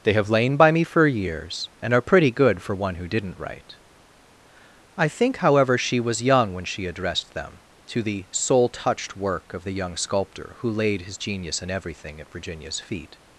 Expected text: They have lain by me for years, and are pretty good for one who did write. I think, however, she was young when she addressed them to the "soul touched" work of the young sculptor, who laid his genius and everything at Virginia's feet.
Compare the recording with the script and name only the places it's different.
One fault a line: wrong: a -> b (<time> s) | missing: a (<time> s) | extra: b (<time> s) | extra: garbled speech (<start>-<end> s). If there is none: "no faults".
wrong: did -> didn't (3.1 s)